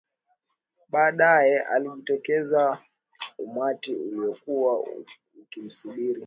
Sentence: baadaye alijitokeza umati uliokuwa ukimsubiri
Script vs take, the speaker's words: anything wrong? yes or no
no